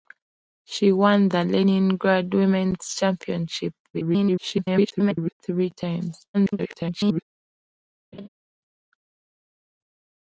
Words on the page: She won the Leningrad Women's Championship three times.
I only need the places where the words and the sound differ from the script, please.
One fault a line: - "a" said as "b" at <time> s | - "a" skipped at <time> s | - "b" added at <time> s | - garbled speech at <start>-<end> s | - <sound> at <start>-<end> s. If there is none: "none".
- garbled speech at 3.9-5.3 s
- garbled speech at 6.3-7.2 s
- laugh at 8.1-8.3 s